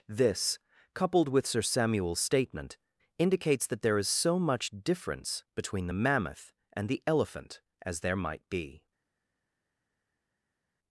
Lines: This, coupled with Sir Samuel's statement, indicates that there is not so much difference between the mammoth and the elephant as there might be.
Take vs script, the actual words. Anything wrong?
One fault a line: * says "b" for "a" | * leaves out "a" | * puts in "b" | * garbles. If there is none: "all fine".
* leaves out "not"